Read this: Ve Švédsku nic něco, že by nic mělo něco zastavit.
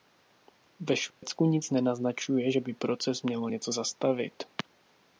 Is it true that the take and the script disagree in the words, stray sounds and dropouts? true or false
true